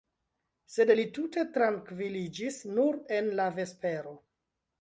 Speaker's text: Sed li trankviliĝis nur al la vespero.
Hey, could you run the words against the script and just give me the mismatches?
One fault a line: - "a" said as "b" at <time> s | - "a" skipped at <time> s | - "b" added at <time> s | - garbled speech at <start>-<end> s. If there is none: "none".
- "tute" added at 1.2 s
- "al" said as "en" at 3.2 s